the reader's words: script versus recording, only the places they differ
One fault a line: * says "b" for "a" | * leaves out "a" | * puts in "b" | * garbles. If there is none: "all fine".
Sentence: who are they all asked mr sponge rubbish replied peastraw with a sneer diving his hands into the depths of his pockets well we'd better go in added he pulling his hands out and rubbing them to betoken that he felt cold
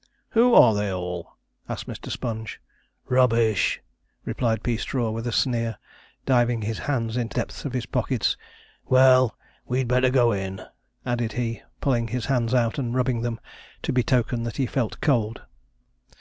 * leaves out "the"